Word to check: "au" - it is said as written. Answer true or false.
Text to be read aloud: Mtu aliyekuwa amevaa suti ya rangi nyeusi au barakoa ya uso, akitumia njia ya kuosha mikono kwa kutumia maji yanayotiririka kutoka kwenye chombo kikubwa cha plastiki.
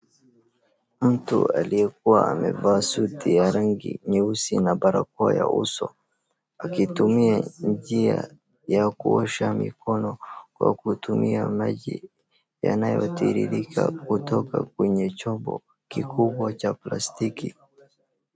false